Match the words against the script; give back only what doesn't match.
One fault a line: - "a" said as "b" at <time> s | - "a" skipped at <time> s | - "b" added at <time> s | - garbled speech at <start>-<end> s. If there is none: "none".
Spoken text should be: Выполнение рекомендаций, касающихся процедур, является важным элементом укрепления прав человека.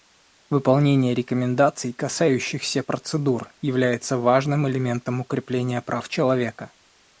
none